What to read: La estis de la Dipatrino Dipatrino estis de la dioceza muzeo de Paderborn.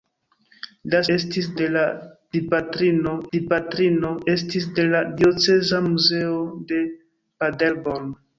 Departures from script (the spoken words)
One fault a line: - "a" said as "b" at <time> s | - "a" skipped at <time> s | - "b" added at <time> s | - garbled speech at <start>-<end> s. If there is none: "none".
none